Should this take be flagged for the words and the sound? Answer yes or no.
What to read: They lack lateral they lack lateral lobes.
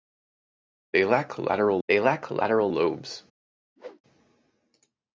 yes